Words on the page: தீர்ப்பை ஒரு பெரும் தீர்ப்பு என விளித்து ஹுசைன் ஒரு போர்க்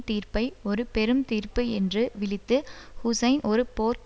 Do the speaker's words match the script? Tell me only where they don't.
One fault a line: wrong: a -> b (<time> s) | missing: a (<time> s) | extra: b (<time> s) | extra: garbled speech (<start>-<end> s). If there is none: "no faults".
wrong: என -> என்று (1.7 s)